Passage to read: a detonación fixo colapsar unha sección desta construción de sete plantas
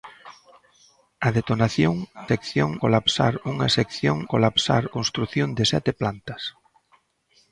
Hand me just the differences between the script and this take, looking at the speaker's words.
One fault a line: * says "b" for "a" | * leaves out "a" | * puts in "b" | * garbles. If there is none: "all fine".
* says "sección" for "fixo"
* says "colapsar" for "desta"